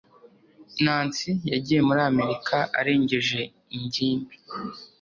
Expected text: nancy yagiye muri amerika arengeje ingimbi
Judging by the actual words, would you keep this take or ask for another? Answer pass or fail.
pass